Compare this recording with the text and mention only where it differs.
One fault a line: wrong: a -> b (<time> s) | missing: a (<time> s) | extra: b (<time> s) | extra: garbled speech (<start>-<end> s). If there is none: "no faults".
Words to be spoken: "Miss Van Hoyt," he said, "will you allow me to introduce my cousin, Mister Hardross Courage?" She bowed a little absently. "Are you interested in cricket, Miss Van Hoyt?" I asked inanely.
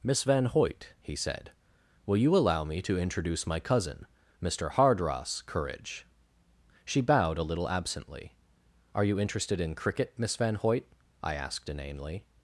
no faults